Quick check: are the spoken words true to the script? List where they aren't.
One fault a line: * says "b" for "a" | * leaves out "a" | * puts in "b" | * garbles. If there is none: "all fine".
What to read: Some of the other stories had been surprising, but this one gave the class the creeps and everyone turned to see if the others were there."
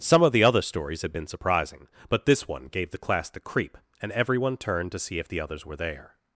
* says "creep" for "creeps"